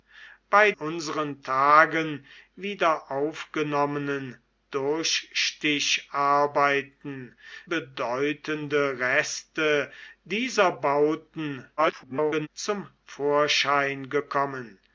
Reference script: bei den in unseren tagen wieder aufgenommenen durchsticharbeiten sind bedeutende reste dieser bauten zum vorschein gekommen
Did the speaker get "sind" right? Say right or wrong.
wrong